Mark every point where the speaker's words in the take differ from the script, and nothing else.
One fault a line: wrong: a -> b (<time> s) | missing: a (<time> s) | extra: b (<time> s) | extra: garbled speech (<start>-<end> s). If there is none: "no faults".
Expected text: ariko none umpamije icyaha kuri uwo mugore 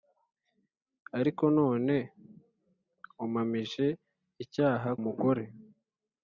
missing: kuri uwo (4.9 s)